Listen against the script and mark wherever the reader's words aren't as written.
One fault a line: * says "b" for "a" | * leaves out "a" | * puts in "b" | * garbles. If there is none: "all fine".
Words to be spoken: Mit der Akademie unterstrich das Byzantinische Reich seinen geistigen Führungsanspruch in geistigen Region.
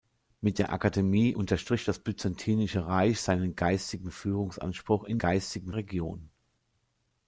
all fine